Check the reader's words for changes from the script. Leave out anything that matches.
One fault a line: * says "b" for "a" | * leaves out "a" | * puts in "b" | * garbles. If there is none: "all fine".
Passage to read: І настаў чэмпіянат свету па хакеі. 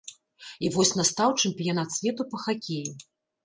* puts in "вось"